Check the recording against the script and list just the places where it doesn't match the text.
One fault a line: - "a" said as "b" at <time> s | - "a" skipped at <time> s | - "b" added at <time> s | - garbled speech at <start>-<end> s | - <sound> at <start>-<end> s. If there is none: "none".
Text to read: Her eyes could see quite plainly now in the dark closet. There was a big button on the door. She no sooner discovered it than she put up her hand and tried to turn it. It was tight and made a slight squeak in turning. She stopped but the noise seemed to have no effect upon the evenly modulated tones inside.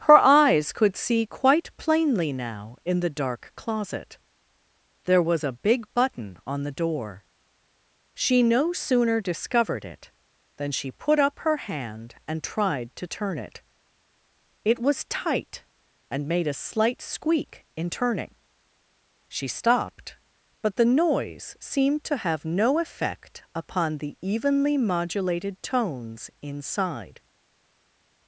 none